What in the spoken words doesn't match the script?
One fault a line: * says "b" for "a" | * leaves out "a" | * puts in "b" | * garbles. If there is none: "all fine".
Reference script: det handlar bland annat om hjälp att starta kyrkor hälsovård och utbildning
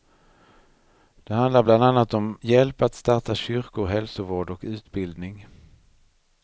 all fine